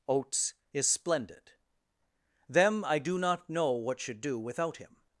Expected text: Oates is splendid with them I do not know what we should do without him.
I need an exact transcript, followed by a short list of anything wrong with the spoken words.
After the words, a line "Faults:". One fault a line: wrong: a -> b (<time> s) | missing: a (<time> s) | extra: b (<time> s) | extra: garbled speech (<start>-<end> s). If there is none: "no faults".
Oates is splendid them I do not know what should do without him.
Faults:
missing: with (1.5 s)
missing: we (4.0 s)